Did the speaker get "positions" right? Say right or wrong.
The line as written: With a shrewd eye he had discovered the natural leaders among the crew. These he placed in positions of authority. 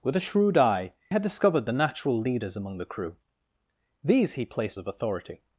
wrong